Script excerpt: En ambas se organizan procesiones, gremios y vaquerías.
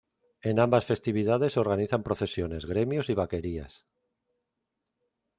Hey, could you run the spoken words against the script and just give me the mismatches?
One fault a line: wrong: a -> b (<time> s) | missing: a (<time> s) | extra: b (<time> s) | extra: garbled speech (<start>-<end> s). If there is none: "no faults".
extra: festividades (0.8 s)